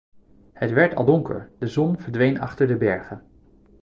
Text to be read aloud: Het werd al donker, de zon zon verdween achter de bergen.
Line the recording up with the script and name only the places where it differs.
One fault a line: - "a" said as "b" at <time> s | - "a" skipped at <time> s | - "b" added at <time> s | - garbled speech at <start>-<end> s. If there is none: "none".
- "zon" skipped at 2.0 s